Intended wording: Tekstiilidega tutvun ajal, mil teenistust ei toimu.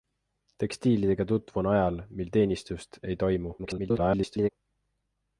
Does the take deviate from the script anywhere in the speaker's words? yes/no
yes